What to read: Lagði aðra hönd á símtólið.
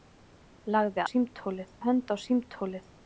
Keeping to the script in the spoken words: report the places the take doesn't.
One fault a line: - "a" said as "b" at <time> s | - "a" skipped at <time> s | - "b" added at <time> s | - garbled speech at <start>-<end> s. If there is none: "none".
- "aðra" said as "símtólið" at 1.1 s